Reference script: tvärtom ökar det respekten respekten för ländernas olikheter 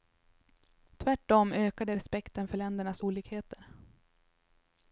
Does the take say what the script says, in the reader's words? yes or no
no